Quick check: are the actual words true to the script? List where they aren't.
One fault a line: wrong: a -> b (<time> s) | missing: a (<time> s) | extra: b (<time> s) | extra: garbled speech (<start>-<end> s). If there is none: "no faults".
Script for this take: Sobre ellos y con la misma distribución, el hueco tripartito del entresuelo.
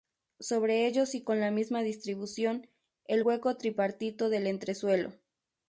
no faults